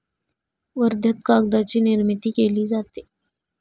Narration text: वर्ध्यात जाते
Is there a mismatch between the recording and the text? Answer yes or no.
yes